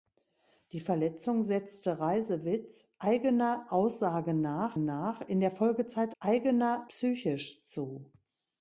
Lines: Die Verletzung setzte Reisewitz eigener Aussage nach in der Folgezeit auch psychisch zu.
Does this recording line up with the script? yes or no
no